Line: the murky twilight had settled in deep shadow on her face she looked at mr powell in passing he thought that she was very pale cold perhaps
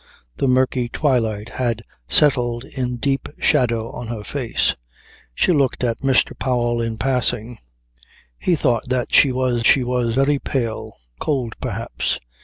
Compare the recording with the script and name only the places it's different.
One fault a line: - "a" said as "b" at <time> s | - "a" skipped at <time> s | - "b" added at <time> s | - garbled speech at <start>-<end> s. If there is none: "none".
- "she was" added at 9.6 s